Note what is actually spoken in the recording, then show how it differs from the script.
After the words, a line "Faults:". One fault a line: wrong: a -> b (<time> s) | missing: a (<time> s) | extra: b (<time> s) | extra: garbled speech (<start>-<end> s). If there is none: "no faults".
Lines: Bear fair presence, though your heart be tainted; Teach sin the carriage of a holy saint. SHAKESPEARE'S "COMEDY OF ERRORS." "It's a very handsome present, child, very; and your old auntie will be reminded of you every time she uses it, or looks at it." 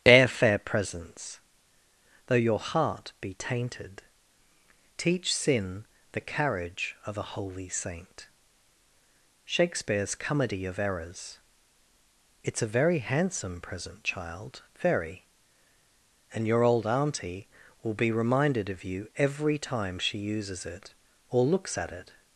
Bear fair presence, though your heart be tainted; Teach sin the carriage of a holy saint. SHAKESPEARE'S "COMEDY OF ERRORS." "It's a very handsome present, child, very; and your old auntie will be reminded of you every time she uses it, or looks at it."
Faults:
no faults